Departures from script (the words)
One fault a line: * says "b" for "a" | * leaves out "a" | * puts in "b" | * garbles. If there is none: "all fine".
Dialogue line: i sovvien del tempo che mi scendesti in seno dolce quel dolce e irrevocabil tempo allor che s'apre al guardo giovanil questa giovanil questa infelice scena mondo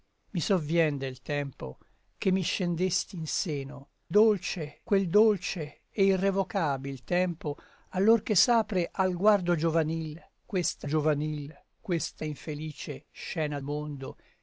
all fine